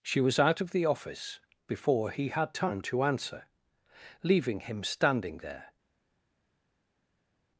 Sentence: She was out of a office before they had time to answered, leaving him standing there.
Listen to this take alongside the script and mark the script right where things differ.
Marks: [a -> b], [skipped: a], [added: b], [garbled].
She was out of [a -> the] office before [they -> he] had time to [answered, -> answer] leaving him standing there.